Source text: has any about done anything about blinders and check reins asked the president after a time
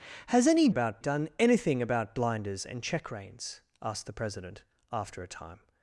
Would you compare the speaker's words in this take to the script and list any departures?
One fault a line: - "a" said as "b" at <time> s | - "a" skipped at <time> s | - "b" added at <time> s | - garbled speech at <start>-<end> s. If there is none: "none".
none